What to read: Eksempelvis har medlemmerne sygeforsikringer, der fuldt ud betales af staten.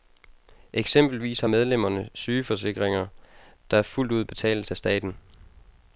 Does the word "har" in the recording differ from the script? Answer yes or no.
no